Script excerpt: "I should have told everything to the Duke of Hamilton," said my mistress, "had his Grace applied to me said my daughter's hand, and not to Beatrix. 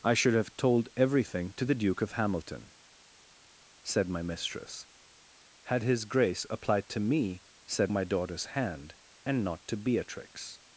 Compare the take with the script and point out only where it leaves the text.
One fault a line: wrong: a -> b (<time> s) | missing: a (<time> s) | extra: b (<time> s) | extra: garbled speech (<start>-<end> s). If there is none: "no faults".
no faults